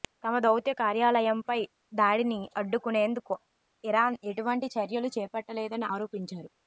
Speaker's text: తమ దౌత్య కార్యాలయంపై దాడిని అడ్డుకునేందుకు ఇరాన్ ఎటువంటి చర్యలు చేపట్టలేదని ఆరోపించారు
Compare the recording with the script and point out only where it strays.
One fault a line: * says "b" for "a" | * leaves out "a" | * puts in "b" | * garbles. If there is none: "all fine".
all fine